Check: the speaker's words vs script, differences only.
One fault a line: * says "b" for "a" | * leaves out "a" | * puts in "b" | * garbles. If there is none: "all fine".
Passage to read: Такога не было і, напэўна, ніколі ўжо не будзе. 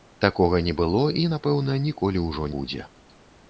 * leaves out "не"